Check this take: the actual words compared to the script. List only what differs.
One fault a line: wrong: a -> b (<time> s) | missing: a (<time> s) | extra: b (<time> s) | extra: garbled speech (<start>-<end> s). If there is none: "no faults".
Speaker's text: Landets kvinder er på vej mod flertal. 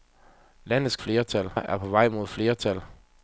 wrong: kvinder -> flertal (0.9 s)